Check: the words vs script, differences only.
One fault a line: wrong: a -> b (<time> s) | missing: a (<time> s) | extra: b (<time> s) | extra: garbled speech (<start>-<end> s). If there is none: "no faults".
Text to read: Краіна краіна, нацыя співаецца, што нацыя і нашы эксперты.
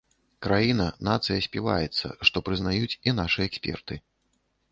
missing: краіна (0.8 s)
wrong: нацыя -> прызнаюць (2.5 s)